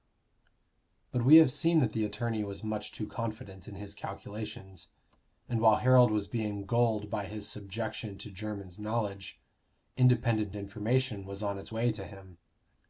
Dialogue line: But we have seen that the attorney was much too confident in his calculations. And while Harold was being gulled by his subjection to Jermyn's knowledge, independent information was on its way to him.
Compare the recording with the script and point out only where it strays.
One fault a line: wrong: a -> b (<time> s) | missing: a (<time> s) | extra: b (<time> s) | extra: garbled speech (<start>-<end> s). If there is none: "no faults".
no faults